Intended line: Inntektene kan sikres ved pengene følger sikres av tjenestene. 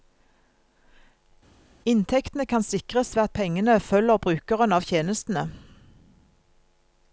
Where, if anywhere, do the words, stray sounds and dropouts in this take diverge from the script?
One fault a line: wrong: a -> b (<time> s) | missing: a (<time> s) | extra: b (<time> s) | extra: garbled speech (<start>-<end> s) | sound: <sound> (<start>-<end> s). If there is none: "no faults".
extra: at (3.2 s)
wrong: sikres -> brukeren (4.3 s)